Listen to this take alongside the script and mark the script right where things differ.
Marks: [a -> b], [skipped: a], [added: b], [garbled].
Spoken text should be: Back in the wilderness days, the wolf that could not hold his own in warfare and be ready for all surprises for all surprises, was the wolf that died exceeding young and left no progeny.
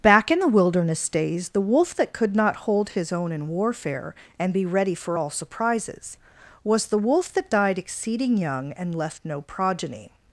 Back in the wilderness days, the wolf that could not hold his own in warfare and be ready for all surprises [skipped: for all surprises,] was the wolf that died exceeding young and left no progeny.